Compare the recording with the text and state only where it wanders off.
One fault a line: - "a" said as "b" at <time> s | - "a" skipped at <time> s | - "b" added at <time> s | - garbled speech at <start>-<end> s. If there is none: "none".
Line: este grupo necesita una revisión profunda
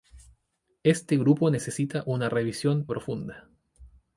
none